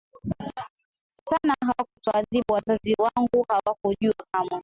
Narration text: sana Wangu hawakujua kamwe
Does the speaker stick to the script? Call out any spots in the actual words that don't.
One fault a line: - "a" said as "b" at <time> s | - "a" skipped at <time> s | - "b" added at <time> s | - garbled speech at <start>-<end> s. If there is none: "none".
- "Hawakutuadhibu Wazazi" added at 1.6 s